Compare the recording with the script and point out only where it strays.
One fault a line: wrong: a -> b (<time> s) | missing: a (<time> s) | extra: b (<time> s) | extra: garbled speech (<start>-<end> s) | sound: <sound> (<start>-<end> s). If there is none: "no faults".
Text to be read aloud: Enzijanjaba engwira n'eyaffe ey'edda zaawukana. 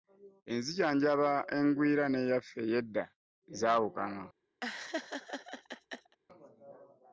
sound: laugh (4.6-6.2 s)